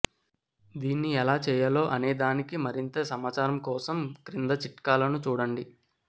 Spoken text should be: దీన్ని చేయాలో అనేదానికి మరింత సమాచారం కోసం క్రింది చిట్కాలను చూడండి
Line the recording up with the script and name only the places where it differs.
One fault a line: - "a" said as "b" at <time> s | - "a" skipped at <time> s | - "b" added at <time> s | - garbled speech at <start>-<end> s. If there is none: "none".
- "ఎలా" added at 1.1 s